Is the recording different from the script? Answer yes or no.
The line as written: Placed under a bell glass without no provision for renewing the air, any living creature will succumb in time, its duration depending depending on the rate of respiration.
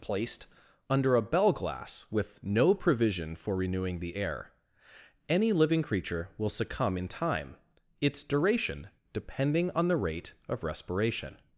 yes